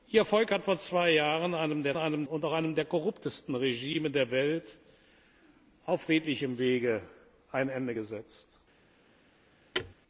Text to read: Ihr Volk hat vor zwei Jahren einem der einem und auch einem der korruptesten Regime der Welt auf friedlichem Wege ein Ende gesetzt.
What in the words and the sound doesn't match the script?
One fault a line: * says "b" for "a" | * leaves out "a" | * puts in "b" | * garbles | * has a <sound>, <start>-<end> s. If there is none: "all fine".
* has a thud, 9.7-9.9 s